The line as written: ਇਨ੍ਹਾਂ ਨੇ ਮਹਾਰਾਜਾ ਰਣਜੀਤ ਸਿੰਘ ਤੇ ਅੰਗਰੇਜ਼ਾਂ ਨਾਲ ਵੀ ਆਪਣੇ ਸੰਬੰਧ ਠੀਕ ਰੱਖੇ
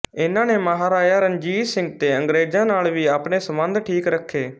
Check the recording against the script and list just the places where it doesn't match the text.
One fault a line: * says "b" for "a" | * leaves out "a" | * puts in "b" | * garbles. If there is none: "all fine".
all fine